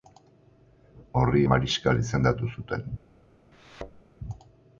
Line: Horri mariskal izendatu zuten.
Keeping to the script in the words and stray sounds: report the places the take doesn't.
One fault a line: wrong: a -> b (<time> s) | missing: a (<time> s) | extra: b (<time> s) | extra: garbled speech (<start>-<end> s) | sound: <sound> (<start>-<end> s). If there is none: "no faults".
sound: thud (3.5-4.0 s)